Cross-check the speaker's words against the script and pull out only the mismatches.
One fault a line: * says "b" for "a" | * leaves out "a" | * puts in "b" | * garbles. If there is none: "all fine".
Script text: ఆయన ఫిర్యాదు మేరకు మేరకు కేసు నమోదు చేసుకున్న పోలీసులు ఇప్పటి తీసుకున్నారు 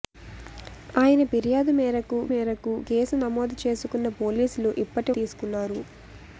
all fine